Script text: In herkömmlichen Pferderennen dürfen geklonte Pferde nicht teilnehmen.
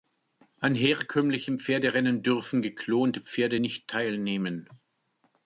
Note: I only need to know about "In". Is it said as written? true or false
false